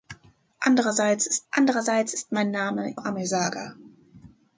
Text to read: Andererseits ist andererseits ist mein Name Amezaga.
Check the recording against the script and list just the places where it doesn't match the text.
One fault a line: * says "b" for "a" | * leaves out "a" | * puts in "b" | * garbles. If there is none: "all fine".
all fine